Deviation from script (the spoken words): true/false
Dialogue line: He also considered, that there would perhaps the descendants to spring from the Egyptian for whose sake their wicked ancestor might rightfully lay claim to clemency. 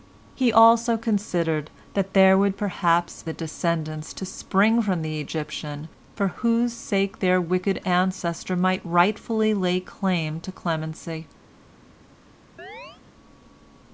false